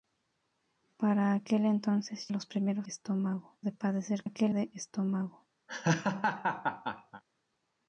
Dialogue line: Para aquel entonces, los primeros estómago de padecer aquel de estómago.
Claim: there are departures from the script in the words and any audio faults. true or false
true